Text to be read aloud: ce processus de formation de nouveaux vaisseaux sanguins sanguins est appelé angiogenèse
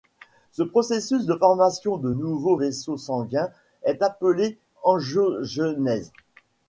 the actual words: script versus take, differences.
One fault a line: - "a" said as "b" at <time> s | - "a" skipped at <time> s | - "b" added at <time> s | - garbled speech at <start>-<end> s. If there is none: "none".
- "sanguins" skipped at 3.5 s